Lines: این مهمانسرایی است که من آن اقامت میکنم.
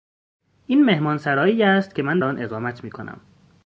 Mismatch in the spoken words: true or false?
false